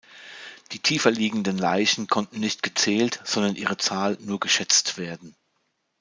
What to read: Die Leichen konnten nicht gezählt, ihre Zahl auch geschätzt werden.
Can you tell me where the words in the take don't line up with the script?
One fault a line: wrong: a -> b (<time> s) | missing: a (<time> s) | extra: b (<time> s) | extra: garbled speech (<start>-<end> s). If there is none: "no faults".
extra: tiefer liegenden (0.8 s)
extra: sondern (3.2 s)
wrong: auch -> nur (4.2 s)